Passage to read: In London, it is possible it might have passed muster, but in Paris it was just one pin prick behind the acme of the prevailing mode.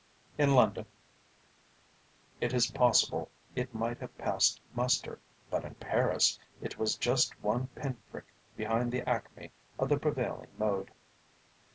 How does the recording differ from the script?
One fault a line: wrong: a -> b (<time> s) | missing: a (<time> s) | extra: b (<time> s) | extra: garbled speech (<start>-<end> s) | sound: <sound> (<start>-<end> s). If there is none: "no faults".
no faults